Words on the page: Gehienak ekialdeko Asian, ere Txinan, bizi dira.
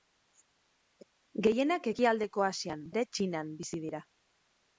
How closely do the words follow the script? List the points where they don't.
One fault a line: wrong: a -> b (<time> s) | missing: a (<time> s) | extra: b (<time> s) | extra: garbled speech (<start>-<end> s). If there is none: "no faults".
no faults